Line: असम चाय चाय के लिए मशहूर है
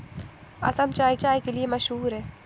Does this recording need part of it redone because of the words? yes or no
no